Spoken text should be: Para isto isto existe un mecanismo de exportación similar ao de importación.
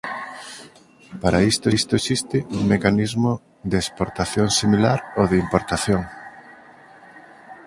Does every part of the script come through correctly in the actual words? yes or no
yes